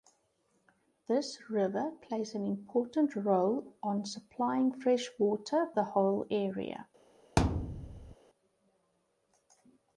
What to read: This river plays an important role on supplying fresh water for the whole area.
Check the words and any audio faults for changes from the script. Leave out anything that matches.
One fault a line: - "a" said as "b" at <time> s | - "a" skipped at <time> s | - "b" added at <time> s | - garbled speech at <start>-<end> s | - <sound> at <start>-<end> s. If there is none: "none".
- "for" skipped at 5.7 s
- thud at 7.4-8.2 s